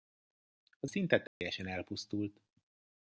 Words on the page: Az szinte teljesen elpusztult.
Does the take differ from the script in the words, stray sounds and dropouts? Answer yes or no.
yes